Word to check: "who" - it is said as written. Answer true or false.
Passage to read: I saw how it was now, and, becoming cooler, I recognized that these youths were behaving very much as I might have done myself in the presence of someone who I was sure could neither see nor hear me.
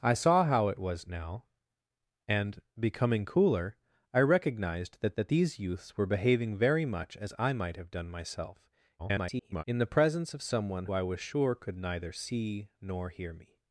false